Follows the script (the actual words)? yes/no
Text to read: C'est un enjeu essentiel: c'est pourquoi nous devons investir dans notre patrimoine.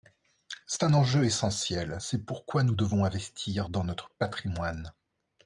yes